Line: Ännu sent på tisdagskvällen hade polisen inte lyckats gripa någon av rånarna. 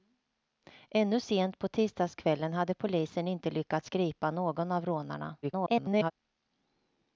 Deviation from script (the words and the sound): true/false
true